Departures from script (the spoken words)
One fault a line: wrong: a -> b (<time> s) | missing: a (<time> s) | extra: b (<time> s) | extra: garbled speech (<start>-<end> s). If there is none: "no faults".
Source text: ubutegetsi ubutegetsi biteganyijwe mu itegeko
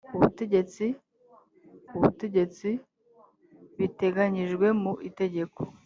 no faults